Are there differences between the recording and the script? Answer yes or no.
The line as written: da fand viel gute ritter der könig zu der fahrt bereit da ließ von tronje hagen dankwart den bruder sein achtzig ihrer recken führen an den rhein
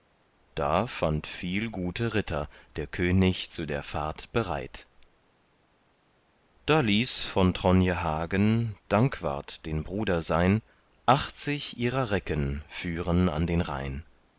no